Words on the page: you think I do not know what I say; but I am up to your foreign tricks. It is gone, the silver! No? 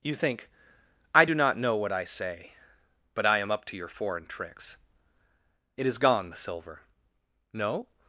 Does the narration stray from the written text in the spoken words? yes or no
no